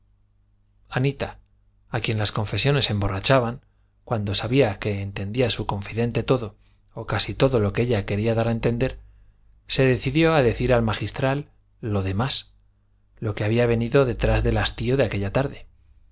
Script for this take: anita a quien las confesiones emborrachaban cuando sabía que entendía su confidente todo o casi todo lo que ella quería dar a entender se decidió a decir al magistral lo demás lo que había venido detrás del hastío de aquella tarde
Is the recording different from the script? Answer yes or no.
no